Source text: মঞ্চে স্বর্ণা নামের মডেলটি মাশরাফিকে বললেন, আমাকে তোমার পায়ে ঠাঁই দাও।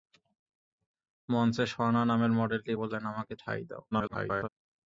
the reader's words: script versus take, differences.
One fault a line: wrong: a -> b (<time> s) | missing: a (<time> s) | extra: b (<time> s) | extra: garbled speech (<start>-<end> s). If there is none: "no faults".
missing: মাশরাফিকে (2.7 s)
missing: তোমার পায়ে (3.3 s)
extra: garbled speech (3.9-4.5 s)